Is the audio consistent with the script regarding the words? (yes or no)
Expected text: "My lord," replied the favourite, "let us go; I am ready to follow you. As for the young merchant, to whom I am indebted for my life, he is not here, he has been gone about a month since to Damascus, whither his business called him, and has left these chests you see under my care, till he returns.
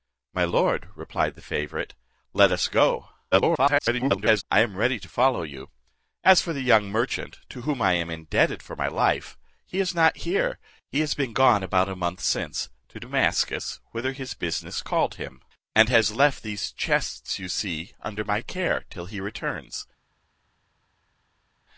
no